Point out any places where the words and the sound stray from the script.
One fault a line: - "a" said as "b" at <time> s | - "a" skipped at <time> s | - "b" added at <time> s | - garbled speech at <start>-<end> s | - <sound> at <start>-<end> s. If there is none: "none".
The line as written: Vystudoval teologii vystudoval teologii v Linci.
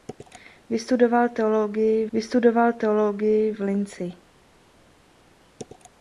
none